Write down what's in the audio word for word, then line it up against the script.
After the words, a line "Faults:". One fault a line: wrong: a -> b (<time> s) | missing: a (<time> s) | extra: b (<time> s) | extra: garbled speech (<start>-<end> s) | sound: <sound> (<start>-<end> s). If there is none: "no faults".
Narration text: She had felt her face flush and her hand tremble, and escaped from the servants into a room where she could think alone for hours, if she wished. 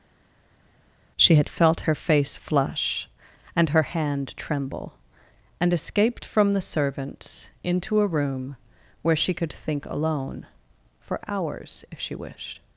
She had felt her face flush and her hand tremble, and escaped from the servants into a room where she could think alone for hours, if she wished.
Faults:
no faults